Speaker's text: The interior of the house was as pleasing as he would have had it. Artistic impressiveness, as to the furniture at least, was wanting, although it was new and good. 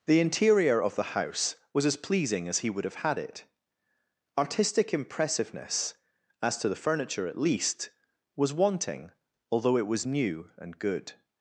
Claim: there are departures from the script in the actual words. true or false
false